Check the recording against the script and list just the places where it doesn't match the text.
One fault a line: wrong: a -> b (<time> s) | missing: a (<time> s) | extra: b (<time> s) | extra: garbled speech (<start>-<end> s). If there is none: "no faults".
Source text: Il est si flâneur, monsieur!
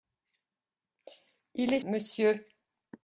missing: si flâneur (1.8 s)